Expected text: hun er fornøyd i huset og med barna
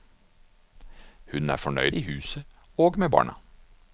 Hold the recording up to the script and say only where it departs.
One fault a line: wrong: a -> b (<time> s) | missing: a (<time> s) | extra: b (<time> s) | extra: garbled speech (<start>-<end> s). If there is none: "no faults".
no faults